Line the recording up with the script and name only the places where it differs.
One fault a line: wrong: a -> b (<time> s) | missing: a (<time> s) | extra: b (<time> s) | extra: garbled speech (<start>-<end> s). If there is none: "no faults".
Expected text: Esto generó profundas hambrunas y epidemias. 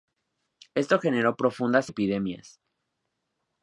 missing: hambrunas y (1.9 s)